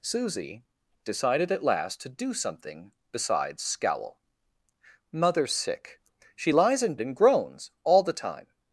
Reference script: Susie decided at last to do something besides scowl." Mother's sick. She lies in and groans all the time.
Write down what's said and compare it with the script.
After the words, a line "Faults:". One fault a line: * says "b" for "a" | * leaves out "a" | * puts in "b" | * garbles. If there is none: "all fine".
Susie decided at last to do something besides scowl." Mother's sick. She lies in and groans all the time.
Faults:
all fine